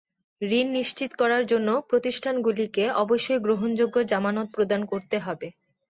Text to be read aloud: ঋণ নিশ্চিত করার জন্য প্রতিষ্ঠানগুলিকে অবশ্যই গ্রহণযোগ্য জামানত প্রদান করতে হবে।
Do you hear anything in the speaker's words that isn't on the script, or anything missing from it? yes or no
no